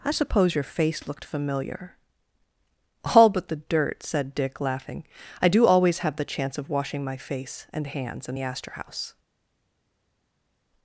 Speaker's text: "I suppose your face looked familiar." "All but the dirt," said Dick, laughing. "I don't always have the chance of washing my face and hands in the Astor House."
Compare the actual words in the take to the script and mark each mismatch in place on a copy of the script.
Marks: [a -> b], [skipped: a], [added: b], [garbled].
"I suppose your face looked familiar." "All but the dirt," said Dick, laughing. "I [don't -> do] always have the chance of washing my face and hands in the Astor House."